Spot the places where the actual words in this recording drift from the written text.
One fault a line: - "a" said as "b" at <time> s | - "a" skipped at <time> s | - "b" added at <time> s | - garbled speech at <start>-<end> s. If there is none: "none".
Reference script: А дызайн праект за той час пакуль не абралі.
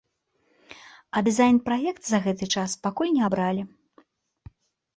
- "той" said as "гэты" at 2.3 s